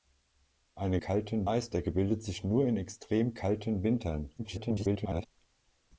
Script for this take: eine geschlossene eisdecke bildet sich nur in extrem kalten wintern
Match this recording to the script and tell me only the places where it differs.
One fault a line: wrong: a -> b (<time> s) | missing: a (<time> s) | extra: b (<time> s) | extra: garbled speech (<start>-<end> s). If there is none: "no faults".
wrong: geschlossene -> kalten (1.0 s)
extra: garbled speech (4.4-5.3 s)